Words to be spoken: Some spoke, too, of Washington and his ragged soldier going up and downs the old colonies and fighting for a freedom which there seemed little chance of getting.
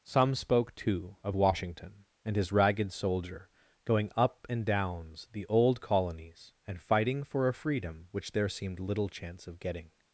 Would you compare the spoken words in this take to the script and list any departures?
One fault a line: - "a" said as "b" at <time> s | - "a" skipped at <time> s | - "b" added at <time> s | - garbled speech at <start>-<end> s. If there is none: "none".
none